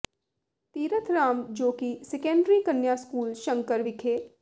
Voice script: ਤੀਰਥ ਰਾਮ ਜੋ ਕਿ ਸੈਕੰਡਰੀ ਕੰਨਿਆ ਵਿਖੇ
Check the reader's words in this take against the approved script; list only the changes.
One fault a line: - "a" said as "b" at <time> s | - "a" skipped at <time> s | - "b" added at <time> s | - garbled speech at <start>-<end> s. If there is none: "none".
- "ਸਕੂਲ ਸ਼ੰਕਰ" added at 3.0 s